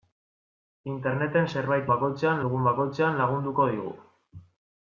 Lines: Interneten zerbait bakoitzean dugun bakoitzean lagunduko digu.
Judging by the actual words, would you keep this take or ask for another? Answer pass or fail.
pass